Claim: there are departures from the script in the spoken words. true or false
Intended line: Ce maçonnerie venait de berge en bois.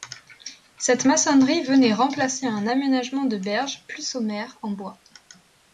true